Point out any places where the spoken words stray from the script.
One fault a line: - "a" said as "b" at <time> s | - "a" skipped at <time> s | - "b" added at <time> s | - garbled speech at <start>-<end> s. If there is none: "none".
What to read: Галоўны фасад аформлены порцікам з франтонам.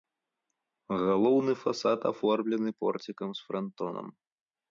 none